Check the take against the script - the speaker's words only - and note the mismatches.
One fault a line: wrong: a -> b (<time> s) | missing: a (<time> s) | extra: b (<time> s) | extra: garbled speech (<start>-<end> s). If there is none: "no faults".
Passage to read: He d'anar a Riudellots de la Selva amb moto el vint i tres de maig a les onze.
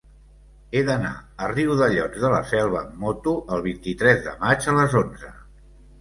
no faults